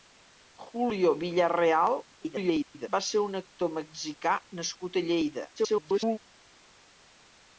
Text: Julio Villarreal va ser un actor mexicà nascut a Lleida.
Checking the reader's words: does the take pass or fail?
fail